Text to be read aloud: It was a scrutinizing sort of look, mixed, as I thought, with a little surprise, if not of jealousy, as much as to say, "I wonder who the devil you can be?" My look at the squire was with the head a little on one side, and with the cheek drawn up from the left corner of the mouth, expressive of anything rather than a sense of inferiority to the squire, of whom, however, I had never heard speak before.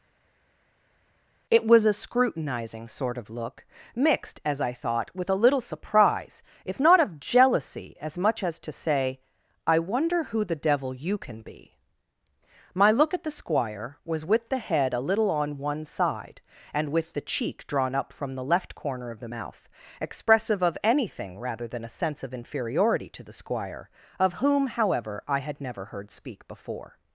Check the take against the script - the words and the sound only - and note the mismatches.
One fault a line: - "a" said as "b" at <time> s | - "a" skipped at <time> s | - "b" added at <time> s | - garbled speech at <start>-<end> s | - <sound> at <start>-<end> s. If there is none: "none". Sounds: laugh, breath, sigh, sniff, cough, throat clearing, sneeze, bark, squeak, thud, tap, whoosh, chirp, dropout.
none